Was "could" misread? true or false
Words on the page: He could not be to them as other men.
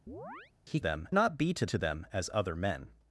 true